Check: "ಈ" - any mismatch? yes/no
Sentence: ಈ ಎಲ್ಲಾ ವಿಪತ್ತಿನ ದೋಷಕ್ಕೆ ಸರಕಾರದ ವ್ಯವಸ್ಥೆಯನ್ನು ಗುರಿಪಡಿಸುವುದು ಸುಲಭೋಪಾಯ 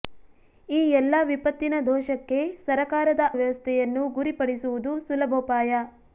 no